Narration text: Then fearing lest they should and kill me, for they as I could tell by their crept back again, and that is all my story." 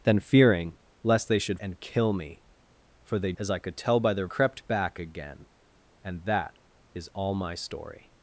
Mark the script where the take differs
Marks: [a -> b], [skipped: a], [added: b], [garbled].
Then fearing lest they should and kill me, for they as I could tell by their crept back again, and that is all my story."